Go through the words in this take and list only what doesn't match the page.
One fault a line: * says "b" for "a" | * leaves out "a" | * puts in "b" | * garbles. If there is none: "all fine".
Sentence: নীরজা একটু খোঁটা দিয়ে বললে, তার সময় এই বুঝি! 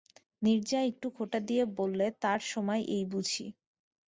all fine